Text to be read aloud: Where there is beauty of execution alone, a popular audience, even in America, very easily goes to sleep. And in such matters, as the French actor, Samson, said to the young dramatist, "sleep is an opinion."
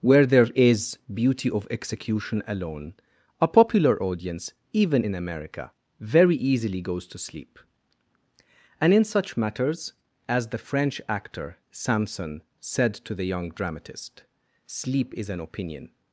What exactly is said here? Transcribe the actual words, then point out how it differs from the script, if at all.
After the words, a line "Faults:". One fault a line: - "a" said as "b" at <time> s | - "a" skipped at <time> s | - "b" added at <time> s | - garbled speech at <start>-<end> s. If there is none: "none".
Where there is beauty of execution alone, a popular audience, even in America, very easily goes to sleep. And in such matters, as the French actor, Samson, said to the young dramatist, "sleep is an opinion."
Faults:
none